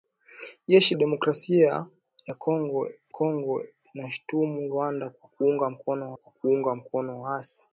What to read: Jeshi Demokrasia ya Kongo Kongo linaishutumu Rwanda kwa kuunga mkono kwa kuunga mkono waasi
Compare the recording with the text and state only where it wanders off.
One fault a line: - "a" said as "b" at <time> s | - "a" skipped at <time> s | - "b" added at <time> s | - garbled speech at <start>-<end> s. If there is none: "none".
none